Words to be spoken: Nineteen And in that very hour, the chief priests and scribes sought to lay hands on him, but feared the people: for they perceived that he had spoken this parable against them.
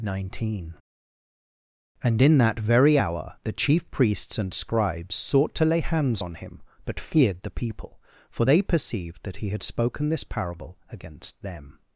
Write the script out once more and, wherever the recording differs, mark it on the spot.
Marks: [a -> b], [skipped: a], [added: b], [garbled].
Nineteen And in that very hour, the chief priests and scribes sought to lay hands on him, but feared the people: for they perceived that he had spoken this parable against them.